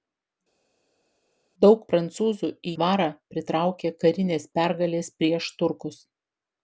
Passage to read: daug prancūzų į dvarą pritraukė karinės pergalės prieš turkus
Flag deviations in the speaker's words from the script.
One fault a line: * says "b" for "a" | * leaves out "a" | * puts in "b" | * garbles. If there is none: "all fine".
all fine